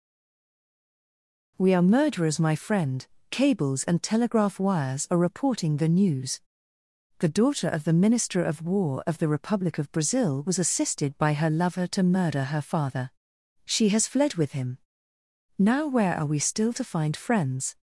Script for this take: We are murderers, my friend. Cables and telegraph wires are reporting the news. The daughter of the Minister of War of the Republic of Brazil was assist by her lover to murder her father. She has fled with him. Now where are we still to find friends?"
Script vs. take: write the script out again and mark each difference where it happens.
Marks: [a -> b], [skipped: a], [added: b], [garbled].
We are murderers, my friend. Cables and telegraph wires are reporting the news. The daughter of the Minister of War of the Republic of Brazil was [assist -> assisted] by her lover to murder her father. She has fled with him. Now where are we still to find friends?"